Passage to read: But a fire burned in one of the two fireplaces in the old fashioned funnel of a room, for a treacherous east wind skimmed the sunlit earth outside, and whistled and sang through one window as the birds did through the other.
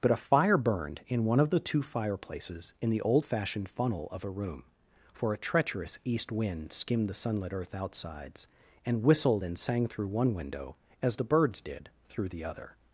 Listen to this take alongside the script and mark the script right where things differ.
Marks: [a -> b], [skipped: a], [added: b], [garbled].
But a fire burned in one of the two fireplaces in the old fashioned funnel of a room, for a treacherous east wind skimmed the sunlit earth [outside, -> outsides] and whistled and sang through one window as the birds did through the other.